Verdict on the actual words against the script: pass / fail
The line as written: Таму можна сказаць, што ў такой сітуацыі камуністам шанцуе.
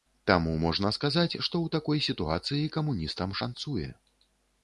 pass